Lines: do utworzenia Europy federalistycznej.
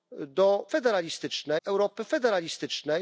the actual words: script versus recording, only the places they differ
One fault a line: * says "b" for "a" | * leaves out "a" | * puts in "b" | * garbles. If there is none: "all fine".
* says "federalistycznej" for "utworzenia"